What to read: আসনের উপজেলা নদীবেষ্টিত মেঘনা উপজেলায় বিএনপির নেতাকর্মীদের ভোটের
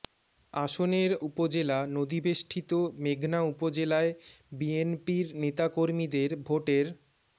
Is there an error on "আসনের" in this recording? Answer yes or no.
no